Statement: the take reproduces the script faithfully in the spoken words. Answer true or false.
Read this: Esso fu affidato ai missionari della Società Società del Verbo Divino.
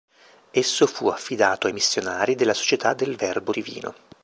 false